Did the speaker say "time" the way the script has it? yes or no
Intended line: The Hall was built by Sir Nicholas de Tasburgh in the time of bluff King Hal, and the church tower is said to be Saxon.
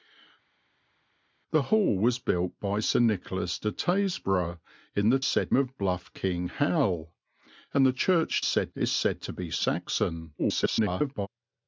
no